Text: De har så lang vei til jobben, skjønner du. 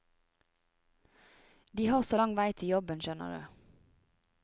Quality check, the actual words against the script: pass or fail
pass